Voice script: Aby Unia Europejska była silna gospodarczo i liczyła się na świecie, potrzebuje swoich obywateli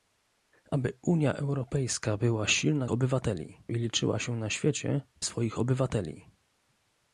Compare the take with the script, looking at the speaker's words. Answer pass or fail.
fail